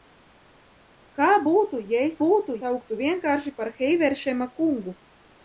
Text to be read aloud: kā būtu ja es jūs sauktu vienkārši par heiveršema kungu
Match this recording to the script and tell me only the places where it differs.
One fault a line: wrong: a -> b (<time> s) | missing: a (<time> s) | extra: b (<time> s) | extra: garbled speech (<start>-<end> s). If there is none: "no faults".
wrong: jūs -> būtu (2.2 s)